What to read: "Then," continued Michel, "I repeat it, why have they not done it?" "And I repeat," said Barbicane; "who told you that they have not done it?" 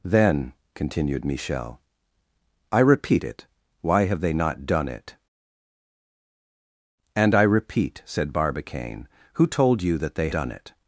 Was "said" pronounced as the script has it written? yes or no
yes